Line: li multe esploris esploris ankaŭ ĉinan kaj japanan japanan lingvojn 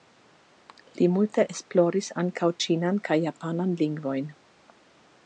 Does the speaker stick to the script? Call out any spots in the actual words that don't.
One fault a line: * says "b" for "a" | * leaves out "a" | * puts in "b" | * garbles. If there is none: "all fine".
* leaves out "esploris"
* leaves out "japanan"